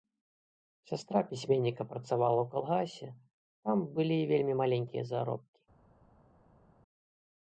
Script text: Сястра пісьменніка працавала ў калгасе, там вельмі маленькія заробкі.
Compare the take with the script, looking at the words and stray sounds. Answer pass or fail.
fail